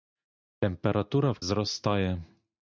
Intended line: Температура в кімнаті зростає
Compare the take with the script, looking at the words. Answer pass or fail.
fail